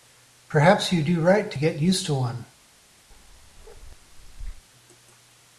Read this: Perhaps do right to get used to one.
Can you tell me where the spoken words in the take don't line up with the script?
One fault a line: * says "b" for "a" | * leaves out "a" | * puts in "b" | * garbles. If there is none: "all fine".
* puts in "you"